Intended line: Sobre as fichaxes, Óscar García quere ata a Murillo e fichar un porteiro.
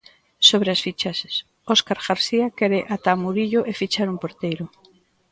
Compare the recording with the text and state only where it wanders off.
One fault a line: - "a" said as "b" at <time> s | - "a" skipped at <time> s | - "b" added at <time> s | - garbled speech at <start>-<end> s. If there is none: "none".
none